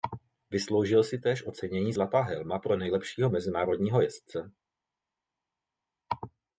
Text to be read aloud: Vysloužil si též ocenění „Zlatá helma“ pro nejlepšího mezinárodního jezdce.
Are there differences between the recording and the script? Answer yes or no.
no